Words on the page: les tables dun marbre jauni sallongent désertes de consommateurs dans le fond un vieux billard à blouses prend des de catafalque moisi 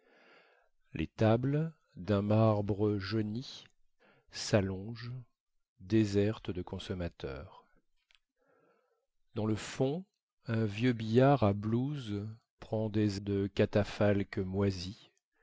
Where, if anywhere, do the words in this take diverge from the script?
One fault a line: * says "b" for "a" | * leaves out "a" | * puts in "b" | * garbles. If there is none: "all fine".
all fine